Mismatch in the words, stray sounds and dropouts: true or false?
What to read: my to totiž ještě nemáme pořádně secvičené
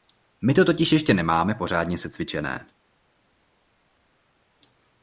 false